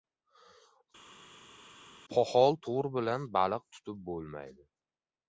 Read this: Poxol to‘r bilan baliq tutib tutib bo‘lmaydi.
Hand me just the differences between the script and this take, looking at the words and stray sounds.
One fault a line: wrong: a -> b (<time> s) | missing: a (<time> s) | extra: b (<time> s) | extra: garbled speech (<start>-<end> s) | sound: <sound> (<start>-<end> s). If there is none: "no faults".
missing: tutib (4.0 s)